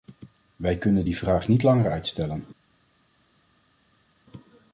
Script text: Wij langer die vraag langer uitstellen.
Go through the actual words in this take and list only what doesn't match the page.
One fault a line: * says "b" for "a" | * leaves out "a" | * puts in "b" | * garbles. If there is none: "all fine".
* says "kunnen" for "langer"
* puts in "niet"